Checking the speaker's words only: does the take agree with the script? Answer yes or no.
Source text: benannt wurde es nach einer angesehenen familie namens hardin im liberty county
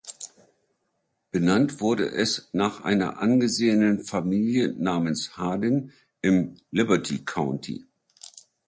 yes